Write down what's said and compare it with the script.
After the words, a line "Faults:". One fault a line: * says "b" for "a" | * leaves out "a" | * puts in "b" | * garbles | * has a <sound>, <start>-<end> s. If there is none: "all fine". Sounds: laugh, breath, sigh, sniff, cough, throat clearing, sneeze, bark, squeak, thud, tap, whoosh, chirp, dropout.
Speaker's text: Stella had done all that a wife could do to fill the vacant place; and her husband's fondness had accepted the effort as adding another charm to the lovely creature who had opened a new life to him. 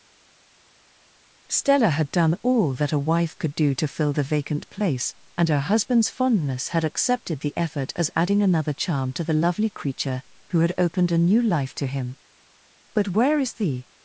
Stella had done all that a wife could do to fill the vacant place; and her husband's fondness had accepted the effort as adding another charm to the lovely creature who had opened a new life to him. But where is the
Faults:
* puts in "But where is the"